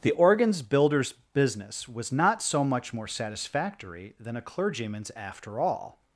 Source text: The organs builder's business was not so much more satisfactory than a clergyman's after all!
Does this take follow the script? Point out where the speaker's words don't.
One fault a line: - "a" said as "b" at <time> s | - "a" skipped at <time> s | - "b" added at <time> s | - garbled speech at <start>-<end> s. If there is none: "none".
none